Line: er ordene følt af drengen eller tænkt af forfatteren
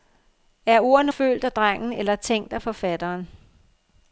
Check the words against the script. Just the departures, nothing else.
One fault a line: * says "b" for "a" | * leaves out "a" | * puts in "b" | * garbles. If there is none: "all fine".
all fine